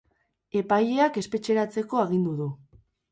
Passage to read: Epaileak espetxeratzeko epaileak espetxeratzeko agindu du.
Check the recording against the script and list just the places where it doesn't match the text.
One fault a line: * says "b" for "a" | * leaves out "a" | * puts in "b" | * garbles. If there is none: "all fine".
* leaves out "epaileak espetxeratzeko"